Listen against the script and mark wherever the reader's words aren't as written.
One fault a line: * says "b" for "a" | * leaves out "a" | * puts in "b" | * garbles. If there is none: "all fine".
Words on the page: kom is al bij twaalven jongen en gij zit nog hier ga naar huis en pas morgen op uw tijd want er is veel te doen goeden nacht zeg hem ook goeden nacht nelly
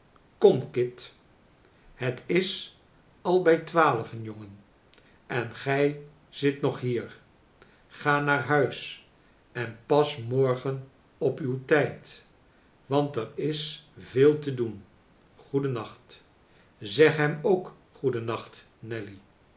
* puts in "kit het"